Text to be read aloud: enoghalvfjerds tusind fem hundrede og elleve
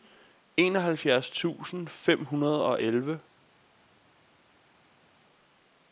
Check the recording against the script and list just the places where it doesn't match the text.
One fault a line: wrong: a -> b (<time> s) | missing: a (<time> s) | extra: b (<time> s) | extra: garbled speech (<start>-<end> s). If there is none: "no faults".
no faults